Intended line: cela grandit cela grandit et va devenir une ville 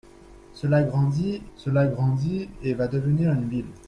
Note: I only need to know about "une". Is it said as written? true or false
true